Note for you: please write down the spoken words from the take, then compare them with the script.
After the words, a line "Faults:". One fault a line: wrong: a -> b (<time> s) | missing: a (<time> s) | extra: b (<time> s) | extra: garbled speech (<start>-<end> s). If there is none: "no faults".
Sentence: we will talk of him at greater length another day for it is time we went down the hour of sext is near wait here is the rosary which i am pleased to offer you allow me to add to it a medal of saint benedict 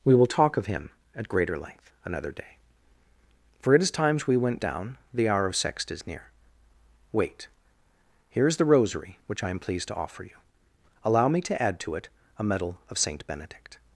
we will talk of him at greater length another day for it is times we went down the hour of sext is near wait here is the rosary which i am pleased to offer you allow me to add to it a medal of saint benedict
Faults:
wrong: time -> times (3.9 s)